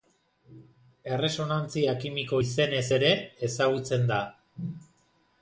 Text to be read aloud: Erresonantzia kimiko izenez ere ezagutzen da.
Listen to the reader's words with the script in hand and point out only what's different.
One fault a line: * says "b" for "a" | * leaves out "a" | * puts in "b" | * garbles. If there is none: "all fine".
all fine